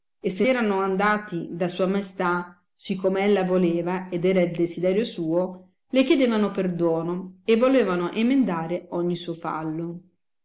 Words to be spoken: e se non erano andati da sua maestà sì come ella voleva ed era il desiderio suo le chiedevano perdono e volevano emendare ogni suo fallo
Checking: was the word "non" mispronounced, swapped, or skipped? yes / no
yes